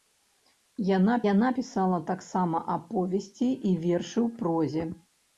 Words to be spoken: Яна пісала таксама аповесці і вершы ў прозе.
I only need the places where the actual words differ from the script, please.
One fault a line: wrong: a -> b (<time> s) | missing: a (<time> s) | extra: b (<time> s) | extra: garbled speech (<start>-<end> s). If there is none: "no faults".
extra: яна (1.3 s)